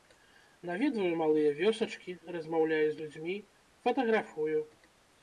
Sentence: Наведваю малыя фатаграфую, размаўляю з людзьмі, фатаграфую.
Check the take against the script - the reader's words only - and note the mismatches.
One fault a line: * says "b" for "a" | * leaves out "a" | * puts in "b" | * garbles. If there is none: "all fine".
* says "вёсачкі" for "фатаграфую"